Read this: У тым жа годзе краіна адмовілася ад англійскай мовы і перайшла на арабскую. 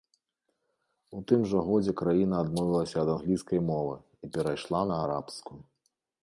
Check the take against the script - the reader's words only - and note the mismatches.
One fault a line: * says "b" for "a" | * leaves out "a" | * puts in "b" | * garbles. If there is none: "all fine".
all fine